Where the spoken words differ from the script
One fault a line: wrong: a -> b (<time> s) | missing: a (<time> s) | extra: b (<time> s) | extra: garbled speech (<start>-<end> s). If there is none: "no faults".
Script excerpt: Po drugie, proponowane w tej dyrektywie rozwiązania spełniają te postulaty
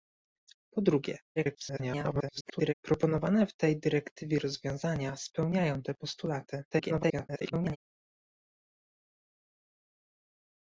extra: garbled speech (1.4-2.7 s)
extra: garbled speech (6.7-7.8 s)